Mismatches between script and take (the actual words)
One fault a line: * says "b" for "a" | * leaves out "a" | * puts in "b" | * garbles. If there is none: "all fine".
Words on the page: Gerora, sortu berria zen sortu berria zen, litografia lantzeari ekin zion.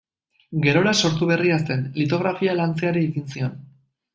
* leaves out "sortu berria zen"